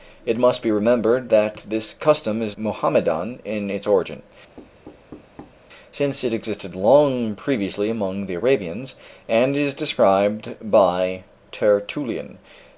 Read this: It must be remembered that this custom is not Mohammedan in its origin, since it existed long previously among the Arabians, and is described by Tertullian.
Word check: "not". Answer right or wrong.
wrong